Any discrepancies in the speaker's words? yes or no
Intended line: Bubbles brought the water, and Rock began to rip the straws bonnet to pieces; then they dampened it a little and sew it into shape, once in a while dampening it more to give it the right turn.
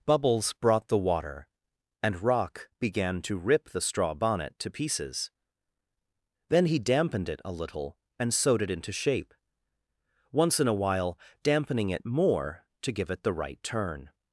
yes